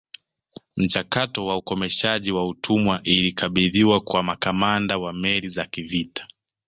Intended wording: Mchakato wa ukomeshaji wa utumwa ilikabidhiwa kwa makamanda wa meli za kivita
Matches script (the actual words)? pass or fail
pass